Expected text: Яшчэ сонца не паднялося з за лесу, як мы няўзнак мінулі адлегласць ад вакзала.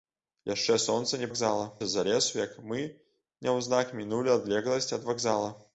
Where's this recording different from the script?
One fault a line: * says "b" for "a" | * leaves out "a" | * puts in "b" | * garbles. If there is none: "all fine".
* says "вакзала" for "паднялося"